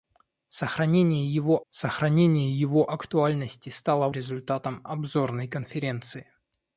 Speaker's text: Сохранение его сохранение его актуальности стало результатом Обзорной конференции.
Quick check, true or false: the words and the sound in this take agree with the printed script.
true